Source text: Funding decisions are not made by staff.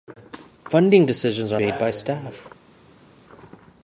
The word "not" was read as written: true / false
false